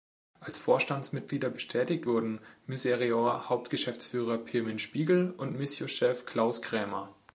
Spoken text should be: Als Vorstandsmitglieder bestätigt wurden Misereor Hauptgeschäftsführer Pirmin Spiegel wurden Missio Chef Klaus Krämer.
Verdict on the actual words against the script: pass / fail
fail